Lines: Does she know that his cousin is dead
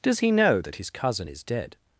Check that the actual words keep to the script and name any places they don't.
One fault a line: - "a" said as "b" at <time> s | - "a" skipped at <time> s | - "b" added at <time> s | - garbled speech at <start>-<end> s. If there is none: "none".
- "she" said as "he" at 0.2 s